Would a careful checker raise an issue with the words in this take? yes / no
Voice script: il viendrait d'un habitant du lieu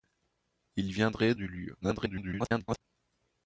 yes